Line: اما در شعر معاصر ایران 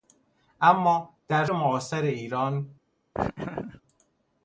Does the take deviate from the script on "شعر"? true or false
true